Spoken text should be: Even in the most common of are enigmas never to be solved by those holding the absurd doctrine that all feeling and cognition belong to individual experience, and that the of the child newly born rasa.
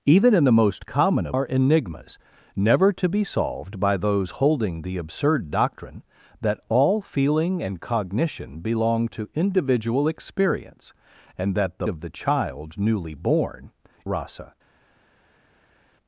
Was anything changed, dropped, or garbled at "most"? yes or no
no